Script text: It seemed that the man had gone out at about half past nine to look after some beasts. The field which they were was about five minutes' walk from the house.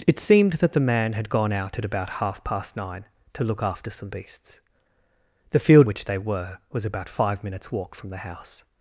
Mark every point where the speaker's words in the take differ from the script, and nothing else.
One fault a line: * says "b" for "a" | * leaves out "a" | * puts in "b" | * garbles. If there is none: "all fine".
all fine